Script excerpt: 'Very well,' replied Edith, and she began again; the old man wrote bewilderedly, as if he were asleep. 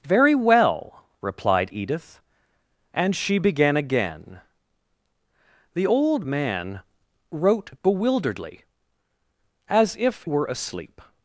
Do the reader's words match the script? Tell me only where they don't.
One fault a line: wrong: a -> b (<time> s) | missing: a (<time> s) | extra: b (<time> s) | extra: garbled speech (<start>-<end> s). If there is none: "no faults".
missing: he (10.3 s)